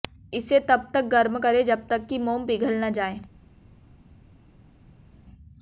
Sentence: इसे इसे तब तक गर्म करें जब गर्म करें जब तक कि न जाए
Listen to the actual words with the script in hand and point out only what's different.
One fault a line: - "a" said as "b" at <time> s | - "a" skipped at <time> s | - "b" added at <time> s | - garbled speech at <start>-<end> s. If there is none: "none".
- "इसे" skipped at 0.6 s
- "गर्म करें जब तक कि" said as "तक कि मोम पिघल" at 1.9 s